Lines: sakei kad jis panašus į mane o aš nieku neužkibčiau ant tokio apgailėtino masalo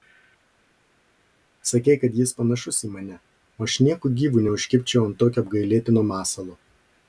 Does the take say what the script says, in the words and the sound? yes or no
no